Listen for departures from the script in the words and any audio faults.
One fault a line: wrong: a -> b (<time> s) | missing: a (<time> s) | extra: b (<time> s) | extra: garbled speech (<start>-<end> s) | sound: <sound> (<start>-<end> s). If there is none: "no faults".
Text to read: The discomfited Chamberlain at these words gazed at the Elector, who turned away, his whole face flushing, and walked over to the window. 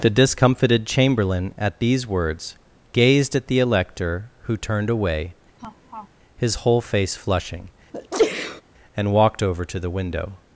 sound: laugh (5.6-6.1 s)
sound: sneeze (7.9-8.6 s)